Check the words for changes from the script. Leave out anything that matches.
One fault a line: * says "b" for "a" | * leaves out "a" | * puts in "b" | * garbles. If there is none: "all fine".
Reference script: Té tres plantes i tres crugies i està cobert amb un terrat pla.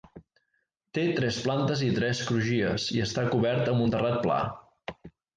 all fine